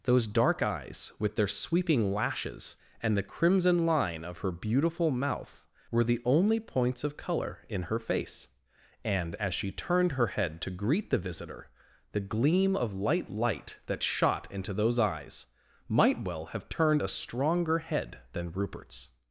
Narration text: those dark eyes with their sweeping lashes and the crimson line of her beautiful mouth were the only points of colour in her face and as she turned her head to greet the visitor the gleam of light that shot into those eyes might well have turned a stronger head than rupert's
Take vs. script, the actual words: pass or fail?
fail